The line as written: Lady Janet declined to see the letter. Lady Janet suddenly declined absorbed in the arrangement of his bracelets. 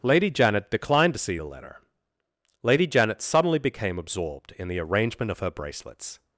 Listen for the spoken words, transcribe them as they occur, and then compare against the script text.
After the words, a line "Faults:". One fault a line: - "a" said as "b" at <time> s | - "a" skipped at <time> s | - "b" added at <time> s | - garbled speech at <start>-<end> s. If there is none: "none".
Lady Janet declined to see the letter. Lady Janet suddenly became absorbed in the arrangement of her bracelets.
Faults:
- "declined" said as "became" at 3.6 s
- "his" said as "her" at 5.4 s